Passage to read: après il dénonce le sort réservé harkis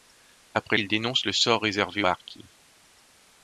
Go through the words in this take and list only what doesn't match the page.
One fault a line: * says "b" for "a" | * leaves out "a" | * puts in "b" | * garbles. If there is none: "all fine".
all fine